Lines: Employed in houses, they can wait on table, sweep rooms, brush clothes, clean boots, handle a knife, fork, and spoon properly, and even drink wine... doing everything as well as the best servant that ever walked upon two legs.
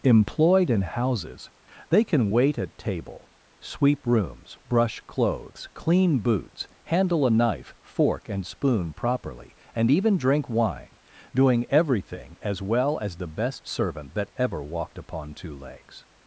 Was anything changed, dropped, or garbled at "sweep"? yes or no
no